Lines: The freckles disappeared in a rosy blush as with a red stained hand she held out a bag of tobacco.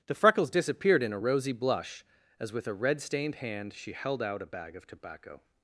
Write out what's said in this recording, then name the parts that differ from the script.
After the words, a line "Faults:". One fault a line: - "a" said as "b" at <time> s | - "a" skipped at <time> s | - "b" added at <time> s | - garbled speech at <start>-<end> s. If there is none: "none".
The freckles disappeared in a rosy blush as with a red stained hand she held out a bag of tobacco.
Faults:
none